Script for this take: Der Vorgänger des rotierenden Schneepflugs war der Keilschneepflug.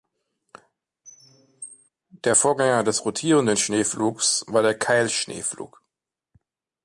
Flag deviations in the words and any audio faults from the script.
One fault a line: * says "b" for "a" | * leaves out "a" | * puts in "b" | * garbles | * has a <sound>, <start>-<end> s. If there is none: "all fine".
* has a squeak, 1.0-1.9 s